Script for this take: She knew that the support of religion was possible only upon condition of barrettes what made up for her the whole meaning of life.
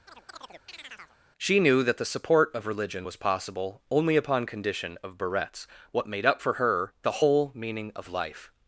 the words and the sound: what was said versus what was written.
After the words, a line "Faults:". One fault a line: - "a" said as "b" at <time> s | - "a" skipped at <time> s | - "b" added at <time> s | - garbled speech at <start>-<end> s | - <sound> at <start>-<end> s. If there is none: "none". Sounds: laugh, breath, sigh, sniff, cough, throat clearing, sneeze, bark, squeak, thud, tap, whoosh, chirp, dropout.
She knew that the support of religion was possible only upon condition of barrettes what made up for her the whole meaning of life.
Faults:
- chirp at 0.1-1.2 s